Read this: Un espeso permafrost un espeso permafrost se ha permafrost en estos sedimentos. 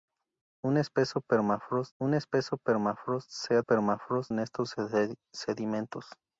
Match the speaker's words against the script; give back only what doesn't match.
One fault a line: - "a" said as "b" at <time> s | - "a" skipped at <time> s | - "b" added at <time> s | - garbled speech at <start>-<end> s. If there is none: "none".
none